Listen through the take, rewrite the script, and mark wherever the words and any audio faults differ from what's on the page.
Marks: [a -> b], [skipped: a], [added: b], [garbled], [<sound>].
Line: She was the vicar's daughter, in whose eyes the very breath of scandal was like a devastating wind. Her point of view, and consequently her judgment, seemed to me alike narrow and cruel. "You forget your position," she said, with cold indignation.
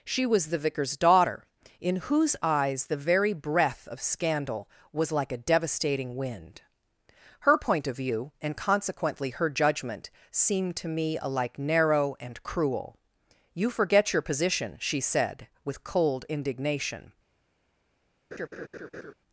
She was the vicar's daughter, in whose eyes the very breath of scandal was like a devastating wind. Her point of view, and consequently her judgment, seemed to me alike narrow and cruel. "You forget your position," she said, with cold indignation. [laugh]